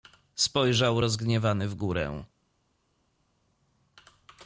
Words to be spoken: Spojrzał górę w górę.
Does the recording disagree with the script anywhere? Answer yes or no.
yes